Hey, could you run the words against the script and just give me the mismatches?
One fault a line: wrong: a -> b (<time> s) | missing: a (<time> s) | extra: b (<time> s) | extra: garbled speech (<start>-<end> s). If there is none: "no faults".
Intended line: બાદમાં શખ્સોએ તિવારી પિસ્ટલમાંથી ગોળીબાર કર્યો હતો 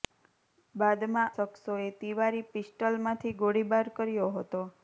no faults